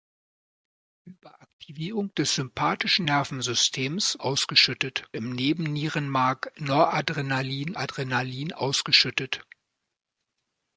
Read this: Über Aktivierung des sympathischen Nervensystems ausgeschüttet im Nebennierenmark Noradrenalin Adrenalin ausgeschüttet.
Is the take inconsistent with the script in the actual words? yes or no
no